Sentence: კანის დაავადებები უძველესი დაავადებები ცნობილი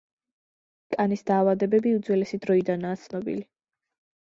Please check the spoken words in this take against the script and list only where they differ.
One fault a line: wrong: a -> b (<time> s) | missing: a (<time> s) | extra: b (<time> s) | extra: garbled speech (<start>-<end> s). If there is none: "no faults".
wrong: დაავადებები -> დროიდანაა (2.5 s)